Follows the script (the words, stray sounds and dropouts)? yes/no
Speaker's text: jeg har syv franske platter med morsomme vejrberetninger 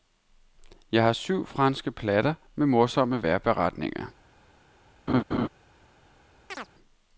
no